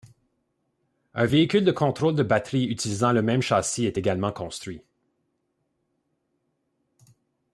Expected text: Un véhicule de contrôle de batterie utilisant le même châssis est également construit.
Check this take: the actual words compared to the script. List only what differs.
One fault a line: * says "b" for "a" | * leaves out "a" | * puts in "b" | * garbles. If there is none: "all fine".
all fine